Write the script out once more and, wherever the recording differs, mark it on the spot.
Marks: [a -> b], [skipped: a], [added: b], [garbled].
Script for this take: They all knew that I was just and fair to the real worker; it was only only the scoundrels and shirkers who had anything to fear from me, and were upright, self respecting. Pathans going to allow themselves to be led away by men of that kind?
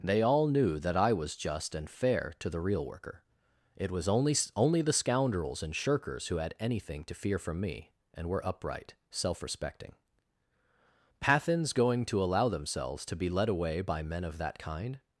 They all knew that I was just and fair to the real worker; it was only only the scoundrels and shirkers who had anything to fear from me, and were upright, self respecting. Pathans going to allow themselves to be led away by men of that kind?